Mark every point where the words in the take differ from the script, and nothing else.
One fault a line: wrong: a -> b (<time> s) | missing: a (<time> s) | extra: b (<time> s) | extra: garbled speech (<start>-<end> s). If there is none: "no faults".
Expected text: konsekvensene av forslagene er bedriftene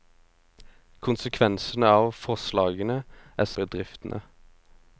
no faults